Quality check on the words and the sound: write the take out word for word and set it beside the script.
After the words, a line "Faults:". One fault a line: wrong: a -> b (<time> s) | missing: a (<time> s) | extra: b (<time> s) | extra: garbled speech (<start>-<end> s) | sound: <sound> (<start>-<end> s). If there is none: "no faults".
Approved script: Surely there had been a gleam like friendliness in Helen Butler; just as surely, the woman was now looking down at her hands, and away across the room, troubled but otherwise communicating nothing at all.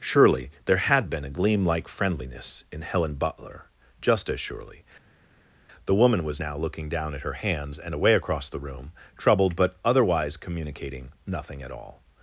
Surely there had been a gleam like friendliness in Helen Butler; just as surely, the woman was now looking down at her hands, and away across the room, troubled but otherwise communicating nothing at all.
Faults:
no faults